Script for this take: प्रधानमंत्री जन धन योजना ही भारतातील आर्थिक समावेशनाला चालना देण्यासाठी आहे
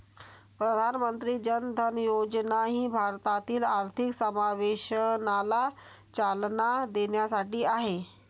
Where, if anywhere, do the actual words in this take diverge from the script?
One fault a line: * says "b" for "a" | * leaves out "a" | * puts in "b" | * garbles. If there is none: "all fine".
all fine